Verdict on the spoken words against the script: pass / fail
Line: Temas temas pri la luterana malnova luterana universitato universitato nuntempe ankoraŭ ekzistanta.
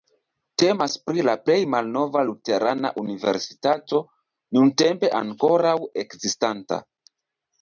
fail